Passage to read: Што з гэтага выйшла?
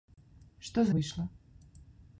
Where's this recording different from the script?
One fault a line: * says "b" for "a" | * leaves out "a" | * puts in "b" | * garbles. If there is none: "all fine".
* leaves out "гэтага"